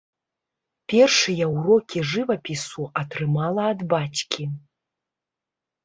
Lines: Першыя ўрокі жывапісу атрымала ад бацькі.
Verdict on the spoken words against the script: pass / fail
pass